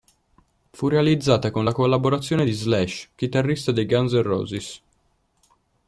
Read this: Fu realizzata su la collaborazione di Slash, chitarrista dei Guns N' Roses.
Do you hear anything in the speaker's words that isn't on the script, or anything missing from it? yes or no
yes